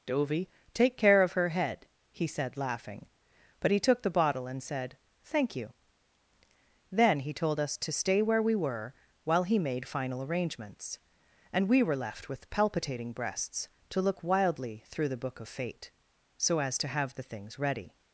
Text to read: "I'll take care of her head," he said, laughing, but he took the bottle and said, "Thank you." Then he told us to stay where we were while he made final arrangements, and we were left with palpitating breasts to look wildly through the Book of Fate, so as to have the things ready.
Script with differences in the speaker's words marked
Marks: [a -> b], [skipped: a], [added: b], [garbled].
["I'll -> Dovey] take care of her head," he said, laughing, but he took the bottle and said, "Thank you." Then he told us to stay where we were while he made final arrangements, and we were left with palpitating breasts to look wildly through the Book of Fate, so as to have the things ready.